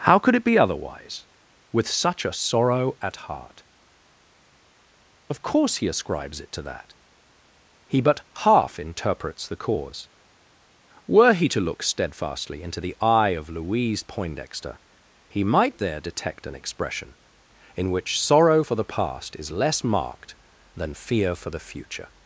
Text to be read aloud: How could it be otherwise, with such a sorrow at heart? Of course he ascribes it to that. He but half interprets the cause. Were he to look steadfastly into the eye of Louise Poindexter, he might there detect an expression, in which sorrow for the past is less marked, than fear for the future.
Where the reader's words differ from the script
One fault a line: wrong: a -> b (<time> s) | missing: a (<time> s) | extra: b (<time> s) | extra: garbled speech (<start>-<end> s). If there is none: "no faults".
no faults